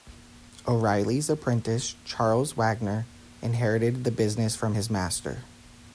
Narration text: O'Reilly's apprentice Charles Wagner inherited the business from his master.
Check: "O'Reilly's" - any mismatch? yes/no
no